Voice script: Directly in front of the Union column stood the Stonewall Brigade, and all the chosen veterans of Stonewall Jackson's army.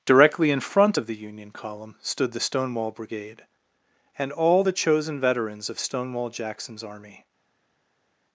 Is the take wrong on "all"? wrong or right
right